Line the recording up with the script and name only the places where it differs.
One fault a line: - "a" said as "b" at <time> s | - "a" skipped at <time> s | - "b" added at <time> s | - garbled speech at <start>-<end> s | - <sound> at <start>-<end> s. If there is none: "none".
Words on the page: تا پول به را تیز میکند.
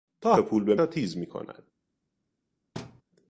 - thud at 2.7-3.0 s